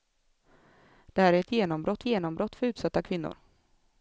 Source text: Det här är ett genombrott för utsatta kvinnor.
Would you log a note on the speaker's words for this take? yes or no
yes